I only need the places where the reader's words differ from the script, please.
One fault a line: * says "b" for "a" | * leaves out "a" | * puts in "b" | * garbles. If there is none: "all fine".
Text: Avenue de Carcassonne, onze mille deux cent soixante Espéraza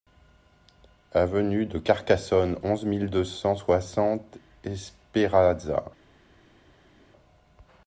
all fine